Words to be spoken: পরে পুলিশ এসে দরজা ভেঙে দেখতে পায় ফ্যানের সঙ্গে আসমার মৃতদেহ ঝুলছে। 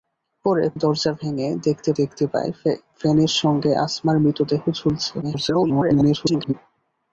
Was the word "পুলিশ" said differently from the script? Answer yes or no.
yes